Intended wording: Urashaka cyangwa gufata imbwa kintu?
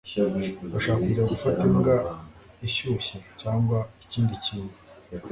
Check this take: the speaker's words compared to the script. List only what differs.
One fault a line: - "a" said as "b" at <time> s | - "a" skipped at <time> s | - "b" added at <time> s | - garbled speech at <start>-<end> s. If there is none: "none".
- "cyangwa" said as "kujya" at 1.1 s
- "ishyushye cyangwa ikindi" added at 2.7 s